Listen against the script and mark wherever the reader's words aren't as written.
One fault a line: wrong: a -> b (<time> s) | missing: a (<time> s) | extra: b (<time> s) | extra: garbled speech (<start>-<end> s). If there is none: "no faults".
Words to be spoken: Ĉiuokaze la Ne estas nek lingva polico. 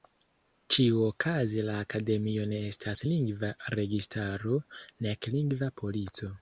extra: Akademio (1.8 s)
extra: lingva registaro (3.1 s)